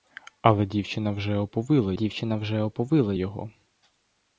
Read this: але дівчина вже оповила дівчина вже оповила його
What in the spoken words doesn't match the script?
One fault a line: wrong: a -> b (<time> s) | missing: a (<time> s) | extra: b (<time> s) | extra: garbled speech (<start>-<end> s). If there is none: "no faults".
no faults